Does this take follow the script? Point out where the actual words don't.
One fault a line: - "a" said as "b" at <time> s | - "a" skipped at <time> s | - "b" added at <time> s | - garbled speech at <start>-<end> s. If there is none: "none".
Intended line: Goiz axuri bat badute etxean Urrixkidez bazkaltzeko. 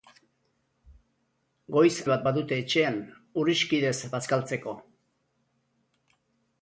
- "axuri" skipped at 1.9 s